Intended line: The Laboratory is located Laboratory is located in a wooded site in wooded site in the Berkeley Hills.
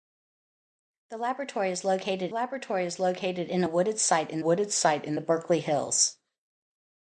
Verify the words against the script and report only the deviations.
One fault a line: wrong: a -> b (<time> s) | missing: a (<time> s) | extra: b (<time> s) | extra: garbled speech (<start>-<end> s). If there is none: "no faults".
no faults